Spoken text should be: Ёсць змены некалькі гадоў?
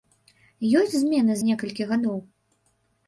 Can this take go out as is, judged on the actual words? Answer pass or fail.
pass